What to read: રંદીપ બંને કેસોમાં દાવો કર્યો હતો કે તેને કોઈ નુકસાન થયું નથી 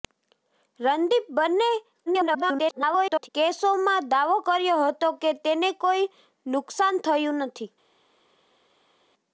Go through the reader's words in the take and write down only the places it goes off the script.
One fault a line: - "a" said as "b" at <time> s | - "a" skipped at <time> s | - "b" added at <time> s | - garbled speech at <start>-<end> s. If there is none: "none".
- garbled speech at 2.1-3.3 s